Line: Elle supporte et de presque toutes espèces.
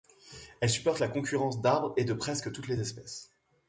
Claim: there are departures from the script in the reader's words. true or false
true